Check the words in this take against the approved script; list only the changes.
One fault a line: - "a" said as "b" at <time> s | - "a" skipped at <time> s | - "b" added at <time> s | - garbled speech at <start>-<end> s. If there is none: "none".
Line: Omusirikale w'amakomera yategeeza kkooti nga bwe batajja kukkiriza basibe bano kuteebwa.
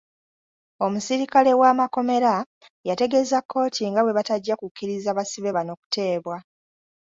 none